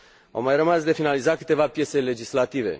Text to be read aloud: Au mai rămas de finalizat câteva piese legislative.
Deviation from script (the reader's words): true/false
false